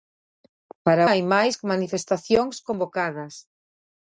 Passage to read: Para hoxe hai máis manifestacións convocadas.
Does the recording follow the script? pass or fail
fail